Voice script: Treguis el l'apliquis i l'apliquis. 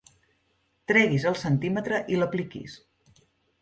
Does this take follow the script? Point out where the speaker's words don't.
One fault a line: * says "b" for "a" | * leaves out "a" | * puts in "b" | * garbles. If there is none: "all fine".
* says "centímetre" for "l'apliquis"